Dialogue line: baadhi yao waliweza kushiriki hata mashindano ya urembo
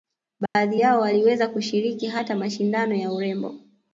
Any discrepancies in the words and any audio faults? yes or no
yes